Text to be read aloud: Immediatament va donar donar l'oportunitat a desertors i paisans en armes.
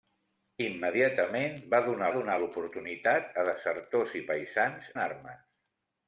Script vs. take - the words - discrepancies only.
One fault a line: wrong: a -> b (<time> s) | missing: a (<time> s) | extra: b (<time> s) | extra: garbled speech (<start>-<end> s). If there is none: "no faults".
no faults